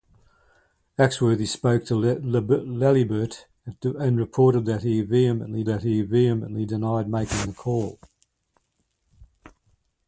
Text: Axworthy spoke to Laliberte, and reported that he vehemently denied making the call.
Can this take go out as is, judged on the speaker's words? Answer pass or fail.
fail